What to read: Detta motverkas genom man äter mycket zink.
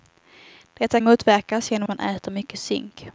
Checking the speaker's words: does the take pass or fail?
pass